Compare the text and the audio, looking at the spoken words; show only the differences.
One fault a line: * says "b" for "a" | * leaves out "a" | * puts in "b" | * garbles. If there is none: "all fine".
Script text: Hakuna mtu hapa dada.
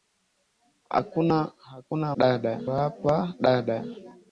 * says "dada" for "mtu"